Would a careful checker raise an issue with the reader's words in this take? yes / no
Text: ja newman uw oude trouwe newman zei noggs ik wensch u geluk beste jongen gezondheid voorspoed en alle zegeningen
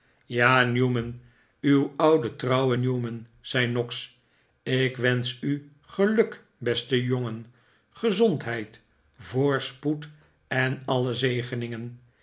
no